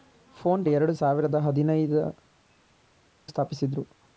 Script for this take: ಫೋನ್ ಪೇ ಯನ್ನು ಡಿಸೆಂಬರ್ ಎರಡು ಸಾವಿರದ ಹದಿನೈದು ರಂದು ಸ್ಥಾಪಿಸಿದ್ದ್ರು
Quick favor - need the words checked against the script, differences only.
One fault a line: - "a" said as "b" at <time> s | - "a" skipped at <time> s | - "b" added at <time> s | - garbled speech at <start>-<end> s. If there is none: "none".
- "ಪೇ ಯನ್ನು ಡಿಸೆಂಬರ್" skipped at 0.6 s
- "ರಂದು" skipped at 2.0 s